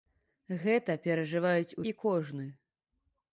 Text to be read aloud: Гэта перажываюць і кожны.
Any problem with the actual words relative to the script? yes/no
no